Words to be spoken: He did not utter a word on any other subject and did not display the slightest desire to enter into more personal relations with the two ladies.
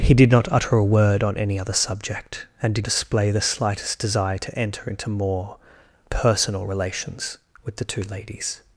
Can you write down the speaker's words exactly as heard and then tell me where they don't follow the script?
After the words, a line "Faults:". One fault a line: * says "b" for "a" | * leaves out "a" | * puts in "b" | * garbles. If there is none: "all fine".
He did not utter a word on any other subject and did display the slightest desire to enter into more personal relations with the two ladies.
Faults:
* leaves out "not"